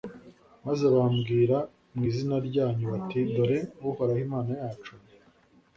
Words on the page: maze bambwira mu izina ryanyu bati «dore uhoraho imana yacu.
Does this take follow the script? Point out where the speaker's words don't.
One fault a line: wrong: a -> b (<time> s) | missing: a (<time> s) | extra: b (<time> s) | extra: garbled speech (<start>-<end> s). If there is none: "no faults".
no faults